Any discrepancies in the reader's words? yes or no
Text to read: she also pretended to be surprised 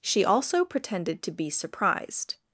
no